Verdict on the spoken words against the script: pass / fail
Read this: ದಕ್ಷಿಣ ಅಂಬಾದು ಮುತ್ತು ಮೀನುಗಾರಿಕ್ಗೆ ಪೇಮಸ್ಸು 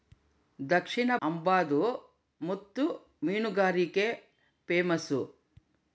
pass